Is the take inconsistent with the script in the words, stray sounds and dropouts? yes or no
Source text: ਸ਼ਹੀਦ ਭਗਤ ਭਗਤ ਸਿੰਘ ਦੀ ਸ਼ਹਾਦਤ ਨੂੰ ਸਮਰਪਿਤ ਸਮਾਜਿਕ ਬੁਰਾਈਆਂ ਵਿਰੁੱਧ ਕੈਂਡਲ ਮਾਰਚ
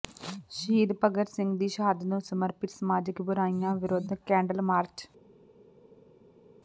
yes